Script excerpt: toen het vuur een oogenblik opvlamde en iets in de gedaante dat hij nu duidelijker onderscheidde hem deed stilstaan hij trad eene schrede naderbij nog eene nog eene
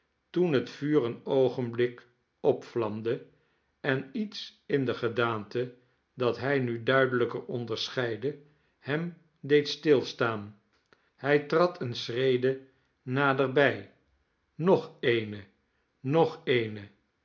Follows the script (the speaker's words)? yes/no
yes